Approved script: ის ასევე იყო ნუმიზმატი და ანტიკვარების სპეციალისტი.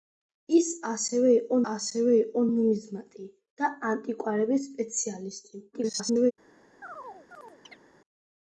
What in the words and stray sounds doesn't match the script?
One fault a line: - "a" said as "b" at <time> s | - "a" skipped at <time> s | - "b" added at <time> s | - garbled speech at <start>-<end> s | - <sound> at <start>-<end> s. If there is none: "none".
- "ასევე იყო" added at 1.7 s
- garbled speech at 5.7-6.3 s
- chirp at 6.8-7.8 s